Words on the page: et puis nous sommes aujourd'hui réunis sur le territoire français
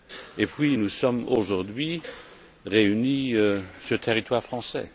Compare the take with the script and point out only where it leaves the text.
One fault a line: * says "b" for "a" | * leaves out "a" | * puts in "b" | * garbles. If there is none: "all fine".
all fine